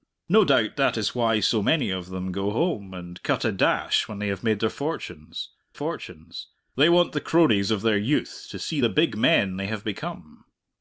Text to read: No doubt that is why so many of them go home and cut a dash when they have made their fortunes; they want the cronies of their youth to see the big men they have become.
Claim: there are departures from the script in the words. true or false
true